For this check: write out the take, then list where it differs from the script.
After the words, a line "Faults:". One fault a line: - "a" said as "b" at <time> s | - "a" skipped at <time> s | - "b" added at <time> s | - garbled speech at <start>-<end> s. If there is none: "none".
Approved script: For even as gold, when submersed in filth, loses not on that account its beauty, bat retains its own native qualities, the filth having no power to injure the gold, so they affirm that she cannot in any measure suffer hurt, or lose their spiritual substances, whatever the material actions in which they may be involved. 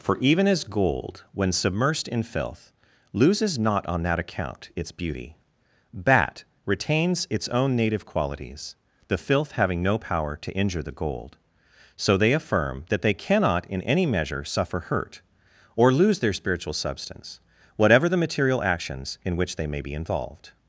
For even as gold, when submersed in filth, loses not on that account its beauty, bat retains its own native qualities, the filth having no power to injure the gold, so they affirm that they cannot in any measure suffer hurt, or lose their spiritual substance, whatever the material actions in which they may be involved.
Faults:
- "she" said as "they" at 13.0 s
- "substances" said as "substance" at 16.7 s